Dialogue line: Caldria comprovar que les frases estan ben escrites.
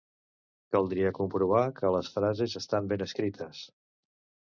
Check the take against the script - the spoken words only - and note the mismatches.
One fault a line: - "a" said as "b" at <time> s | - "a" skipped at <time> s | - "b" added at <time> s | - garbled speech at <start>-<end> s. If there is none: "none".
none